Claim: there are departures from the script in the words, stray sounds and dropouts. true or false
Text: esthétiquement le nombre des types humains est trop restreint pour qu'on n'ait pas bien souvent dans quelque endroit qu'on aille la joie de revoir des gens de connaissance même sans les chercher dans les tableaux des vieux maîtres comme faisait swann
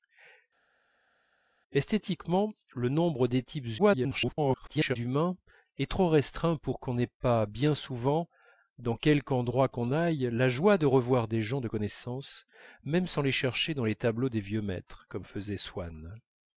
true